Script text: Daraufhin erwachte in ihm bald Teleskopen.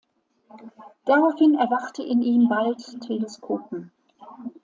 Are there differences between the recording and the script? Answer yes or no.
no